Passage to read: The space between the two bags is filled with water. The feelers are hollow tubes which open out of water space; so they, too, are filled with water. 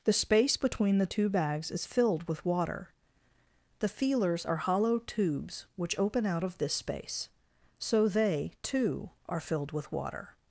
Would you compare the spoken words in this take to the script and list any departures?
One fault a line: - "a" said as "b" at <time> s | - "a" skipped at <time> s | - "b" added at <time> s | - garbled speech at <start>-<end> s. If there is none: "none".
- "water" said as "this" at 6.6 s